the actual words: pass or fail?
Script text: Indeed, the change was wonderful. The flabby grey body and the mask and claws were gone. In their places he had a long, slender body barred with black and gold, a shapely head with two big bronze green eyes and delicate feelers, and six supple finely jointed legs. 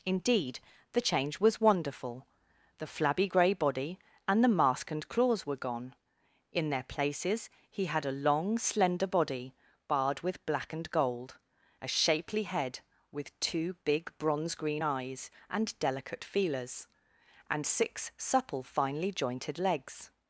pass